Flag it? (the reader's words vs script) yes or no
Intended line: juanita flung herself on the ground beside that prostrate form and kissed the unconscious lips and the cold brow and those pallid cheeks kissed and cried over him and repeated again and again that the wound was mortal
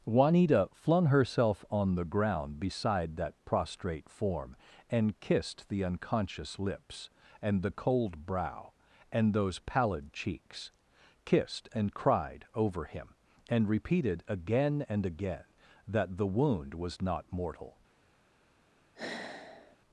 yes